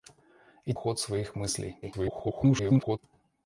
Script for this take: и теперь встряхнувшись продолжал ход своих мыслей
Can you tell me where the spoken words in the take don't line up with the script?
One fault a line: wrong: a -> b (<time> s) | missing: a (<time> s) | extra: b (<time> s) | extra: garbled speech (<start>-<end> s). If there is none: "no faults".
missing: теперь встряхнувшись продолжал (0.7 s)
extra: garbled speech (1.8-3.0 s)